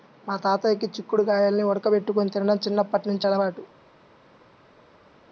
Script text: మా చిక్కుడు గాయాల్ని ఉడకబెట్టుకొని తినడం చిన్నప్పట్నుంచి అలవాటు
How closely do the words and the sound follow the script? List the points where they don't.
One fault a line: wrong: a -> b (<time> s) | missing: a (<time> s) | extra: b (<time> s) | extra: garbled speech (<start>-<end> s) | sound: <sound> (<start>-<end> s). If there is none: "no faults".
extra: తాతయ్యకి (0.4 s)